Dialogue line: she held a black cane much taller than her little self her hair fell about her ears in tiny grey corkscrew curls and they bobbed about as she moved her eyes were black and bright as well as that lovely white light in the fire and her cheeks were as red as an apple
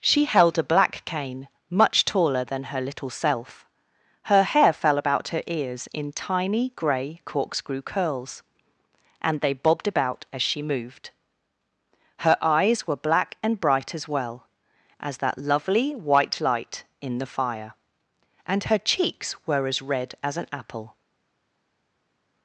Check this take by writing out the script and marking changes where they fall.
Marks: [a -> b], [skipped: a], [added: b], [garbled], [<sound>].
she held a black cane much taller than her little self her hair fell about her ears in tiny grey corkscrew curls and they bobbed about as she moved her eyes were black and bright as well as that lovely white light in the fire and her cheeks were as red as an apple